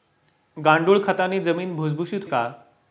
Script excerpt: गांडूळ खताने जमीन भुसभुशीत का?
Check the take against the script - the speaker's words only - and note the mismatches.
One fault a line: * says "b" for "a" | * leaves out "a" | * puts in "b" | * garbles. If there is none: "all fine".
all fine